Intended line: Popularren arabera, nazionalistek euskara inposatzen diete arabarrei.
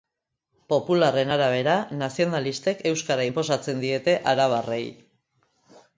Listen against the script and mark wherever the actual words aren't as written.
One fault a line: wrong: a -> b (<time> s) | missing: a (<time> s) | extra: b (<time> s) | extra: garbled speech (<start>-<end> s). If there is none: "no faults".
no faults